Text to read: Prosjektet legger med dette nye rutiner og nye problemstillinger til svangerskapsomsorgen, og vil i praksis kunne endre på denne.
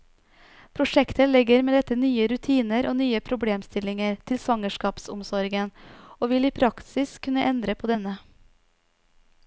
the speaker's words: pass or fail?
pass